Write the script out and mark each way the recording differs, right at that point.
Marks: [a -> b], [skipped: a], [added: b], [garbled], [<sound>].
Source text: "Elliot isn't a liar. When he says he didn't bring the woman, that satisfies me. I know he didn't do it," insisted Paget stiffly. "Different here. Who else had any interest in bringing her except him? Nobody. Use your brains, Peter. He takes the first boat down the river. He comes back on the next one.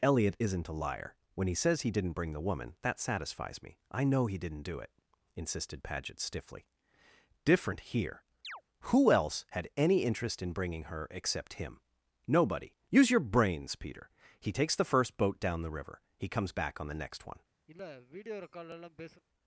"Elliot isn't a liar. When he says he didn't bring the woman, that satisfies me. I know he didn't do it," insisted Paget stiffly. "Different here. [chirp] Who else had any interest in bringing her except him? Nobody. Use your brains, Peter. He takes the first boat down the river. He comes back on the next one. [sniff]